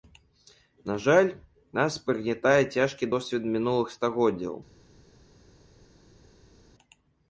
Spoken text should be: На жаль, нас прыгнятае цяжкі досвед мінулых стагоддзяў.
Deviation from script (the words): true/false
false